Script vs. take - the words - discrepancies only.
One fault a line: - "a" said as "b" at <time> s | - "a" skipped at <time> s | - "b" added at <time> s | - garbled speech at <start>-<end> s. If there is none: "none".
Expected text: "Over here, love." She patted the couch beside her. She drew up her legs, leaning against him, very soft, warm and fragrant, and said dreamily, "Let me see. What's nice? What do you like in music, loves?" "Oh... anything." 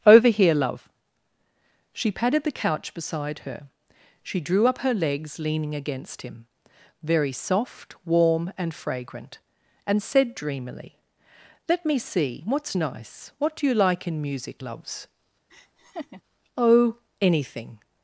none